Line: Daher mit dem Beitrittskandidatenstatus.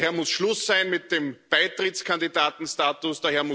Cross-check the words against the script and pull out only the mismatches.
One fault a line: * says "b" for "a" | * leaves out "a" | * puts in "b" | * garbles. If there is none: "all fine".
* puts in "muss Schluss sein"